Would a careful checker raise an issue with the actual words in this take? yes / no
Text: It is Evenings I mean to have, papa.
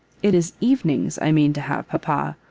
no